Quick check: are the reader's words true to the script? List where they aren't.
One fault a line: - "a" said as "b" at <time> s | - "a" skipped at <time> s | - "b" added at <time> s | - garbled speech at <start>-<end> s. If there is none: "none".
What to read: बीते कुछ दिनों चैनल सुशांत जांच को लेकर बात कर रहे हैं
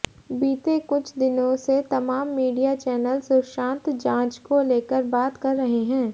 - "से तमाम मीडिया" added at 1.6 s